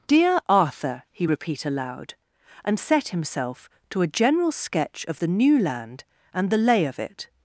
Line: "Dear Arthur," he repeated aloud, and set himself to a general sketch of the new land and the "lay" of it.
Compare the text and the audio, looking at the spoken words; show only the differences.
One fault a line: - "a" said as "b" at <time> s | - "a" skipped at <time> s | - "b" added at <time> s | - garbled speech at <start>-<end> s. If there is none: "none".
- "repeated" said as "repeat" at 1.3 s